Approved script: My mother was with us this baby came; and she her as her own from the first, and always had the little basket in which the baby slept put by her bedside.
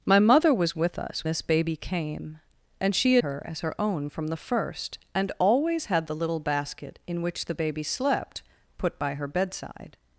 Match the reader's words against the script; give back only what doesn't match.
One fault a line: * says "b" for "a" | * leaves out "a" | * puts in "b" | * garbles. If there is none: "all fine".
all fine